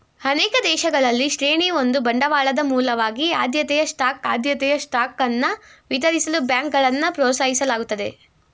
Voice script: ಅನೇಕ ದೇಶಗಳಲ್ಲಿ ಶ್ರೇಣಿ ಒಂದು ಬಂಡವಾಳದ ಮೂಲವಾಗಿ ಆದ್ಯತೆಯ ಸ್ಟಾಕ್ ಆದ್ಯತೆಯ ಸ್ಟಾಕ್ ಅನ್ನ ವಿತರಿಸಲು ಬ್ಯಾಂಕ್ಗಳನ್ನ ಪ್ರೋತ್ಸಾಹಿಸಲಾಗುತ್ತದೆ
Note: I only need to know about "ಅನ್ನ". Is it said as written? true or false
true